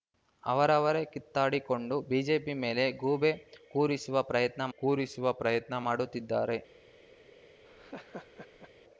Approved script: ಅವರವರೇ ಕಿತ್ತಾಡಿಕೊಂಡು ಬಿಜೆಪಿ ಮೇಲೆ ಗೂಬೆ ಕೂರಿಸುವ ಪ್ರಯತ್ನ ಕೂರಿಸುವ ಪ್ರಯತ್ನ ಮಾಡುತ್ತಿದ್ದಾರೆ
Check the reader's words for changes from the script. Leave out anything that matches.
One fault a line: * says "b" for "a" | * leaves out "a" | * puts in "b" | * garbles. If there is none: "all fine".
all fine